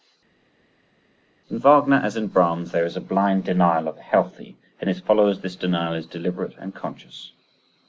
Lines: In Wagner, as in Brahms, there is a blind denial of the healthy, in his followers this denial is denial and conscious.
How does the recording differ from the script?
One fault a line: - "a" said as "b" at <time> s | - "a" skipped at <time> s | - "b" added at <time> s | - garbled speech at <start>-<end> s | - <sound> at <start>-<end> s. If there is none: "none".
- "denial" said as "deliberate" at 6.1 s